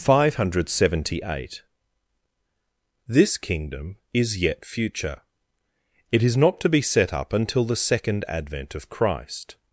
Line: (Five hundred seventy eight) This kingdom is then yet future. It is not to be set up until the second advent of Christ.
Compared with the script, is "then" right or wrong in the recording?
wrong